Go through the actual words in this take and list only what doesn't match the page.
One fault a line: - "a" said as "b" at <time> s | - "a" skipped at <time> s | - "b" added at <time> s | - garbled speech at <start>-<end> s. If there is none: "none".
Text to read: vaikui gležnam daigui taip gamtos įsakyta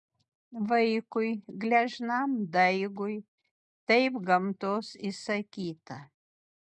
none